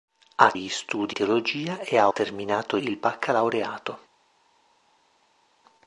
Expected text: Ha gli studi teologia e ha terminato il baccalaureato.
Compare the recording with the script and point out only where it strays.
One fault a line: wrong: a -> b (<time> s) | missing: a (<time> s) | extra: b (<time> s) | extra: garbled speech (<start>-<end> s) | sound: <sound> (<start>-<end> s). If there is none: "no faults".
no faults